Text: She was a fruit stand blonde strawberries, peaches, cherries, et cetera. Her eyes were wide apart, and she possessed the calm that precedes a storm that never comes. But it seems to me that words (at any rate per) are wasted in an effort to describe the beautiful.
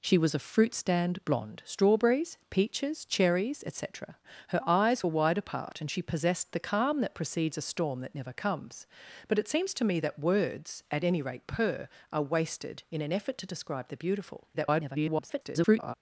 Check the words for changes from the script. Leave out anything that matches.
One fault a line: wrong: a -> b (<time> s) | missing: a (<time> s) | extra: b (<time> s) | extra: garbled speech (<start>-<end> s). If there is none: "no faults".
extra: garbled speech (14.5-15.9 s)